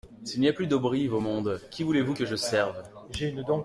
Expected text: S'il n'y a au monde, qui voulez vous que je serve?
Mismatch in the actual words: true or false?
true